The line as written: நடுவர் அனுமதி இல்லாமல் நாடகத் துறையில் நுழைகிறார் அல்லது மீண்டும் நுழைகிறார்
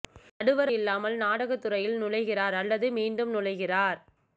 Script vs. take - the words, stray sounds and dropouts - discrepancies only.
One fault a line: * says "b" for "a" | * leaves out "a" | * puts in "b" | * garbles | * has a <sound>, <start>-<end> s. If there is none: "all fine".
* leaves out "அனுமதி"